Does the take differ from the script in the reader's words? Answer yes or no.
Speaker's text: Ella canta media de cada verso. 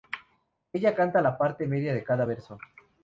yes